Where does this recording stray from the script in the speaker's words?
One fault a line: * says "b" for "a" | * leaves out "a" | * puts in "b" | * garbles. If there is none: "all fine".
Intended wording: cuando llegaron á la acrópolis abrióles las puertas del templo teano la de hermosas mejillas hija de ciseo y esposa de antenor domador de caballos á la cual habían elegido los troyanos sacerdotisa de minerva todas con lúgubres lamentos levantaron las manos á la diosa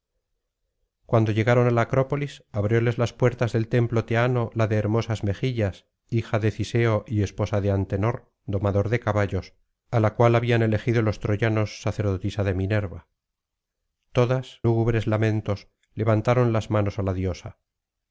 * leaves out "con"